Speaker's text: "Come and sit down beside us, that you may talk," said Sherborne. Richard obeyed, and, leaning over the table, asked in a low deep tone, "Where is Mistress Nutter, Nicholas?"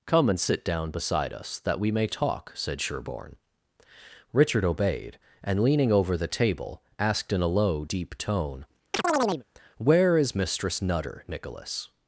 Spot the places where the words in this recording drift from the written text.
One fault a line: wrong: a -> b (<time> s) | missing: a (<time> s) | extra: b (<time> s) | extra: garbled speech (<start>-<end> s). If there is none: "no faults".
wrong: you -> we (1.8 s)